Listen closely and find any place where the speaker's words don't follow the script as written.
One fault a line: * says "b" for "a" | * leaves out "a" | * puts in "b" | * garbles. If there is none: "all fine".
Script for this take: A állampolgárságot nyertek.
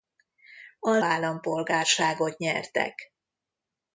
all fine